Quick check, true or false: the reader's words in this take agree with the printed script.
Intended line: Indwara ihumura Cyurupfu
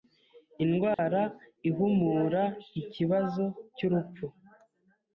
false